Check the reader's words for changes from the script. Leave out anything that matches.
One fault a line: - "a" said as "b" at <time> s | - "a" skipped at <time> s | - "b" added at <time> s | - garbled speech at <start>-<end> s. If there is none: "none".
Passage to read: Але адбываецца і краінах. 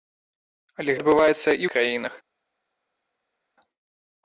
none